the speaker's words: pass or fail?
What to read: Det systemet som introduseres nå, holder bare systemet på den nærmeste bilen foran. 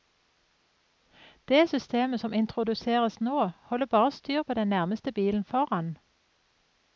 fail